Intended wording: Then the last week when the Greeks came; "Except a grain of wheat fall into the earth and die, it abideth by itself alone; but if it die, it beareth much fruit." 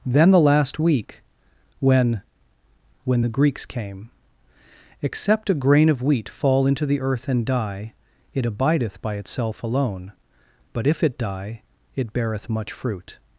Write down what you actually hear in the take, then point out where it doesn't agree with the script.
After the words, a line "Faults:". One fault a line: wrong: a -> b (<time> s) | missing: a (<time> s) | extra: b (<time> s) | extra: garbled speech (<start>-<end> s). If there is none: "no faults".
Then the last week when when the Greeks came; "Except a grain of wheat fall into the earth and die, it abideth by itself alone; but if it die, it beareth much fruit."
Faults:
extra: when (3.0 s)